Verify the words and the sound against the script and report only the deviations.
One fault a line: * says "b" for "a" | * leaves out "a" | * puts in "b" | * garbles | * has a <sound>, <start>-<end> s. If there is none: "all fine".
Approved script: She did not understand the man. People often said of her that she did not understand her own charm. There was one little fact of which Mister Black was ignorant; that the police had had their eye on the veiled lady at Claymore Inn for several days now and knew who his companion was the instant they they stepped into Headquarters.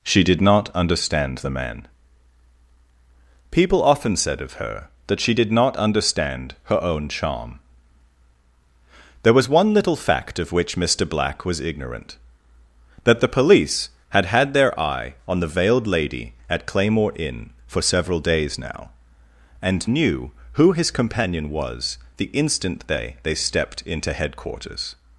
all fine